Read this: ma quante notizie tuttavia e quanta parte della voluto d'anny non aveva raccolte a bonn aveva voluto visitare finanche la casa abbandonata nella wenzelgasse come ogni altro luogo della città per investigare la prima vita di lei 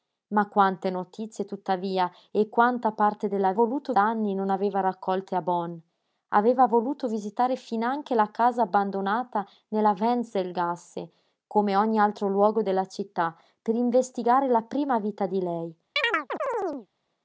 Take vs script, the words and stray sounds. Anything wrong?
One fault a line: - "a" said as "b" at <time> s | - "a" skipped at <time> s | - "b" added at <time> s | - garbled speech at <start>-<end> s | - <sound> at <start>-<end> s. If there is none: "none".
- chirp at 16.0-16.9 s